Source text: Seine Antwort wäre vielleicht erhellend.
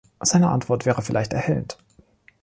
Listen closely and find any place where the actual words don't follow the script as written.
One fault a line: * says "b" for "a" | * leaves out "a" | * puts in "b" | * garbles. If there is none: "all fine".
all fine